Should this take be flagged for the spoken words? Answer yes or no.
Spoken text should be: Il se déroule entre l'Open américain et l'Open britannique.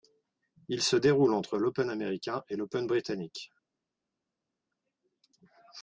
no